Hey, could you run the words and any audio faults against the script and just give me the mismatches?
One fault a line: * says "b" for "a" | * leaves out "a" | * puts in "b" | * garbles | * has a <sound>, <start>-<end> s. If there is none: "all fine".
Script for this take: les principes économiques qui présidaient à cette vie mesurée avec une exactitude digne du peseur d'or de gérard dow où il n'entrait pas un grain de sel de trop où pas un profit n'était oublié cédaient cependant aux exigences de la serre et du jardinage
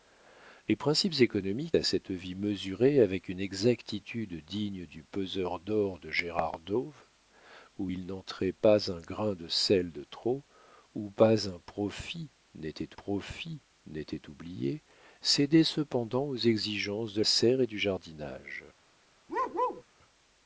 * leaves out "qui présidaient"
* puts in "profit n'était"
* leaves out "la"
* has a bark, 19.3-19.8 s